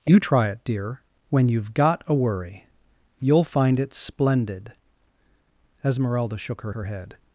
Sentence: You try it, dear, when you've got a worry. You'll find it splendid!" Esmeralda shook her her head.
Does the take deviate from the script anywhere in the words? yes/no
no